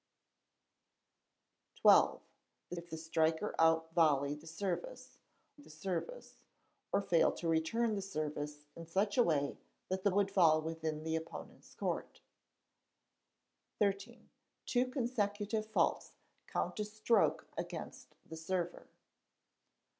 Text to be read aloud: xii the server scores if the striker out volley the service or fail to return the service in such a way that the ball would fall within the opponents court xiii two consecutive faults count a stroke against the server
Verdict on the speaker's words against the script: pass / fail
fail